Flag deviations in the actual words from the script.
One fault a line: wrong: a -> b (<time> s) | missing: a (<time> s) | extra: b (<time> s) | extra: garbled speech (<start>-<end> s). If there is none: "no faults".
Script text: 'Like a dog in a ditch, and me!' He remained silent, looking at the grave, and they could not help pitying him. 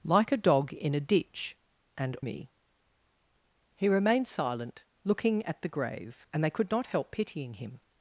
no faults